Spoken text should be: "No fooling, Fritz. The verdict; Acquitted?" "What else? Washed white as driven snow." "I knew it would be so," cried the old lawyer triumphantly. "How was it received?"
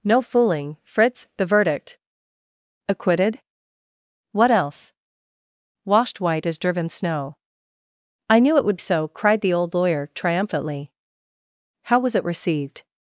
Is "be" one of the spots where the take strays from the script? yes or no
yes